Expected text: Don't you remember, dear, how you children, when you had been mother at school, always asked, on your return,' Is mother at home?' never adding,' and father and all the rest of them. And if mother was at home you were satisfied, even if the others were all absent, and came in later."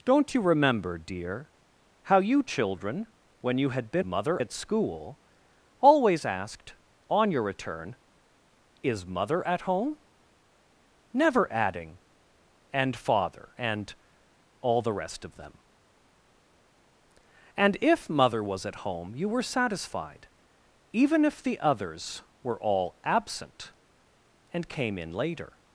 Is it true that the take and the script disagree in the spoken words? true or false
false